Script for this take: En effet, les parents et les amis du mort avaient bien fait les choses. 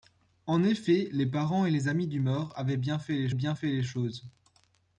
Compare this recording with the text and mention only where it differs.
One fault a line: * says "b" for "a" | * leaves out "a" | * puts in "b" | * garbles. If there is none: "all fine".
* puts in "bien fait les"